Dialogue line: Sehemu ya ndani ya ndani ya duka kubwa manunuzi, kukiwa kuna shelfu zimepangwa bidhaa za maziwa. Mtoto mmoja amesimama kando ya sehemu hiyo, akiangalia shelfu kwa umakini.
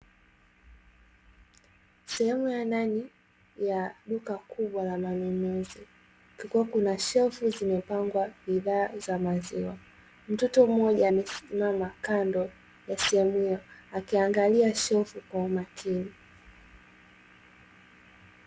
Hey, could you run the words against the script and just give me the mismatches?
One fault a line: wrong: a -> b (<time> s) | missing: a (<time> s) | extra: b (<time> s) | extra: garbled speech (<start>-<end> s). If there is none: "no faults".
missing: ndani ya (4.0 s)
extra: la (4.8 s)